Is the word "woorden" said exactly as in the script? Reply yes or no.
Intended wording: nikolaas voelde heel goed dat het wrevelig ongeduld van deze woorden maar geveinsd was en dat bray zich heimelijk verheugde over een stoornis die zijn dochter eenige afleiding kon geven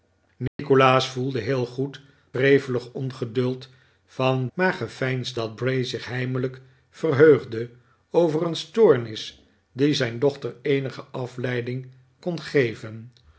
no